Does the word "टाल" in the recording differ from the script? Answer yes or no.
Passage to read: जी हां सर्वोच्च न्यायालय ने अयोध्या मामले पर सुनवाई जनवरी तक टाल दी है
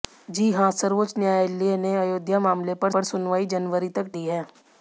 yes